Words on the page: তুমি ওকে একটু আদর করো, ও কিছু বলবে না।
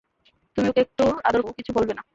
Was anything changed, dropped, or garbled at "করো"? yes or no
yes